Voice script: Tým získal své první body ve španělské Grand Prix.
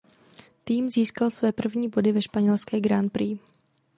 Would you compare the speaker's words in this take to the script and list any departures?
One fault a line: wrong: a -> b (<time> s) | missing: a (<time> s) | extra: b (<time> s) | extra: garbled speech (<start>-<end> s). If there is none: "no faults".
no faults